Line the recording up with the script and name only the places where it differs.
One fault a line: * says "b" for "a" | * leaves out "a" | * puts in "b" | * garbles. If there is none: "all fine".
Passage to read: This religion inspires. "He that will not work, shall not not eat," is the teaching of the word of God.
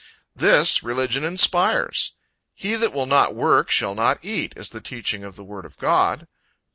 * leaves out "not"